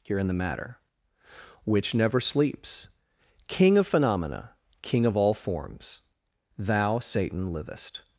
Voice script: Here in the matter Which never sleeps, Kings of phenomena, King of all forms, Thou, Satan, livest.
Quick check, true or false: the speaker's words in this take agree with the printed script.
false